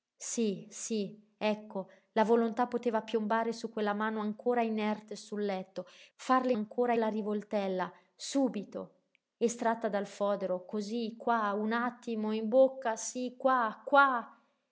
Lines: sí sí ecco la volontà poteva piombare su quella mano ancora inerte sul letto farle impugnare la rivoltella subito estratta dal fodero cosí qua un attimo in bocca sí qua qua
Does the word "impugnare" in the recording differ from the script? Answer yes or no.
yes